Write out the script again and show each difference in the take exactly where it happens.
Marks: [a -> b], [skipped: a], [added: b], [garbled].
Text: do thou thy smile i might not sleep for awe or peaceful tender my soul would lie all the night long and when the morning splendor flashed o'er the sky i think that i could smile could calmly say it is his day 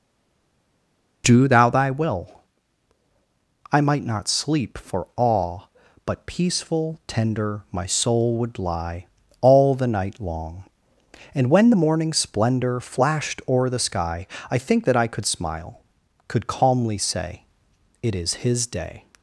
do thou thy [smile -> will] i might not sleep for awe [or -> but] peaceful tender my soul would lie all the night long and when the morning splendor flashed o'er the sky i think that i could smile could calmly say it is his day